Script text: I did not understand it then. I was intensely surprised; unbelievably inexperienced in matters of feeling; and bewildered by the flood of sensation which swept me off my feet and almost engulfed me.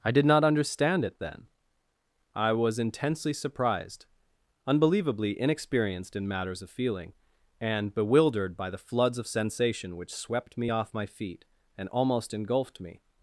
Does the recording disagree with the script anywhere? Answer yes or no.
yes